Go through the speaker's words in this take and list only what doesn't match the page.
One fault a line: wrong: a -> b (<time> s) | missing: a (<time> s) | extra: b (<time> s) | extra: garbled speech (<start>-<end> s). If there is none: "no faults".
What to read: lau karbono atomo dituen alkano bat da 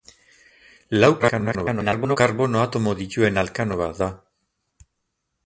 extra: garbled speech (1.2-2.2 s)